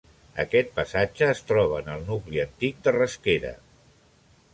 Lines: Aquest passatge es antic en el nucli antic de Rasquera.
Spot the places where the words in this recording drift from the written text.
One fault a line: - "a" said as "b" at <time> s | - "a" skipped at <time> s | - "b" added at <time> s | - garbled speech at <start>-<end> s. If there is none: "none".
- "antic" said as "troba" at 1.5 s